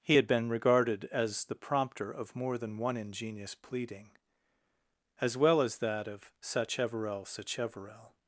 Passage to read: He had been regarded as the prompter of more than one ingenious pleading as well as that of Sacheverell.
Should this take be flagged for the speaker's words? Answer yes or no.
yes